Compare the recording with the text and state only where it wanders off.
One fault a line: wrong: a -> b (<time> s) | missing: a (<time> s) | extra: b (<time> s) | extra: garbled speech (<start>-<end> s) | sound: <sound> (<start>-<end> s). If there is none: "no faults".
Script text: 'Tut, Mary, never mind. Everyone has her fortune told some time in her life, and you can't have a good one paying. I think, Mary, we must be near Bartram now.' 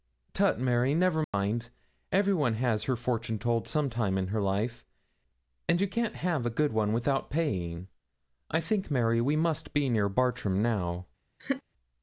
sound: dropout (1.2-1.3 s)
extra: without (6.9 s)
sound: laugh (11.4-11.6 s)